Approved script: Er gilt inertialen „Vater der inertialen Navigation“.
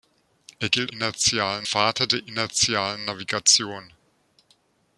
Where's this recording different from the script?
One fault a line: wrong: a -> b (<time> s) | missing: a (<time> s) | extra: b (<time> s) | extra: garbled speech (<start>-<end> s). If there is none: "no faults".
no faults